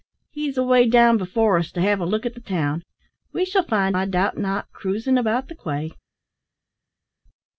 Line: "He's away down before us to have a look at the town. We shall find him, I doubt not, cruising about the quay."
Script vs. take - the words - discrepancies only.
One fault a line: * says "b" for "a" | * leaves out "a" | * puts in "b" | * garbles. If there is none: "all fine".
* leaves out "him"